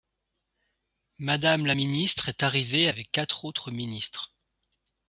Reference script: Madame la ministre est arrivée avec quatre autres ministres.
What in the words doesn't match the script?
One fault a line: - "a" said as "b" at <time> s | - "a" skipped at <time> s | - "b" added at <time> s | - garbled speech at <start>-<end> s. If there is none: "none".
none